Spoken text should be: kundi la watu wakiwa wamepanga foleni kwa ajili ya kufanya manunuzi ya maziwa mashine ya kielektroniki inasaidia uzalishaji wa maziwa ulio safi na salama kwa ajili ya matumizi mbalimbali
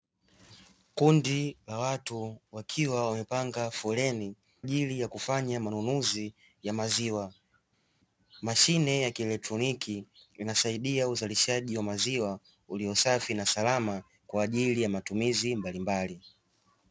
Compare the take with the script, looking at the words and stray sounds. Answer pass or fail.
fail